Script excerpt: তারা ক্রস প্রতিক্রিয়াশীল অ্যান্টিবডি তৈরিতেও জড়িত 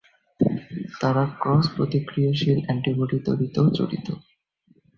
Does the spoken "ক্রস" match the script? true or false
true